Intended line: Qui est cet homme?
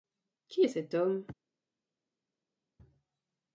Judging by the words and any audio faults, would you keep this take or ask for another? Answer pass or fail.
pass